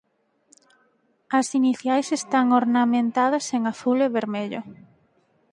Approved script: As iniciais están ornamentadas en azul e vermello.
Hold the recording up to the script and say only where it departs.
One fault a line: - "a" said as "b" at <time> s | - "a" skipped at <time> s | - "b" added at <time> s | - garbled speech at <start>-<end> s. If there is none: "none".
none